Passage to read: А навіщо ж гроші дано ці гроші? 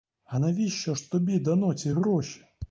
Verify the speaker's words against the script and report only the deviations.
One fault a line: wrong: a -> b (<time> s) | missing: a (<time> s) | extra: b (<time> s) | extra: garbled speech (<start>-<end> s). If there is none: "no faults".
wrong: гроші -> тобі (1.1 s)